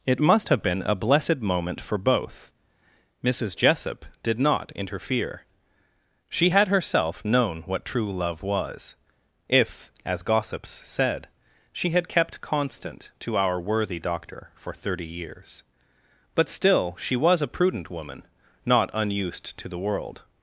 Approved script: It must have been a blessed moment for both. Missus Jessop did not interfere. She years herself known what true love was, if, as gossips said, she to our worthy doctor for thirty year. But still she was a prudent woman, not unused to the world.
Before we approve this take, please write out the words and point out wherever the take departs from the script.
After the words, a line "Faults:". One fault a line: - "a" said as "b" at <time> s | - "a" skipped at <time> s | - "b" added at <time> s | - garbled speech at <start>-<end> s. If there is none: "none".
It must have been a blessed moment for both. Missus Jessop did not interfere. She had herself known what true love was, if, as gossips said, she had kept constant to our worthy doctor for thirty years. But still she was a prudent woman, not unused to the world.
Faults:
- "years" said as "had" at 6.5 s
- "had kept constant" added at 11.9 s
- "year" said as "years" at 15.1 s